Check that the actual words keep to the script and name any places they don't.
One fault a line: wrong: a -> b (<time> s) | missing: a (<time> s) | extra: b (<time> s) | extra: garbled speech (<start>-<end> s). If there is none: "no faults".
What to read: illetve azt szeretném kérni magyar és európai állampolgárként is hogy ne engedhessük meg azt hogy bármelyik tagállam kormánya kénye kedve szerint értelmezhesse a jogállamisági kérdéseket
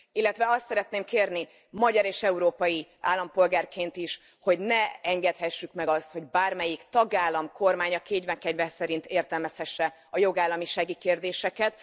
no faults